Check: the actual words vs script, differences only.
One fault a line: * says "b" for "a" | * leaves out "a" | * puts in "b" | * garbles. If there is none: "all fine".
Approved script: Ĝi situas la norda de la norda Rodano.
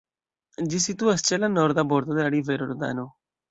* puts in "ĉe"
* puts in "bordo"
* says "rivero" for "norda"